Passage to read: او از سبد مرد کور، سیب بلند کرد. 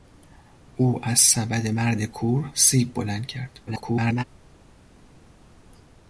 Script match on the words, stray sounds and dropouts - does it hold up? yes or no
no